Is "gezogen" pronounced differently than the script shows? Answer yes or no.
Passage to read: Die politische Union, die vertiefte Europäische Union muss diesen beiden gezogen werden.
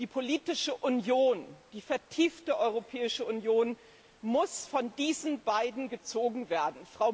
no